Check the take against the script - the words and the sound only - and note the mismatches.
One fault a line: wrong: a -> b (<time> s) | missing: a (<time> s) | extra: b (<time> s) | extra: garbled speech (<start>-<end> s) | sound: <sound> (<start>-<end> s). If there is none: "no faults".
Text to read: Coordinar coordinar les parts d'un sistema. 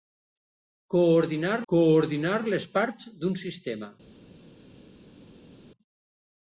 no faults